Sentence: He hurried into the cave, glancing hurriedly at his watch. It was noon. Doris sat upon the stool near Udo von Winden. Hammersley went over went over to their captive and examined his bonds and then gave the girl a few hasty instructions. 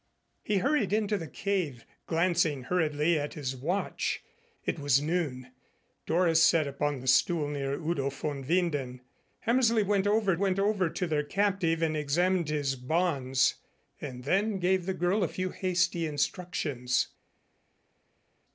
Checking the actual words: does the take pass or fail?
pass